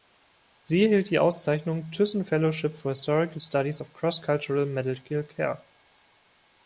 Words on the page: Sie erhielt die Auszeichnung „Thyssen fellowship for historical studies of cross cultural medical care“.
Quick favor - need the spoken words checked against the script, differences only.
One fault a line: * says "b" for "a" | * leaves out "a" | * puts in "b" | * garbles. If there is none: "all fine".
all fine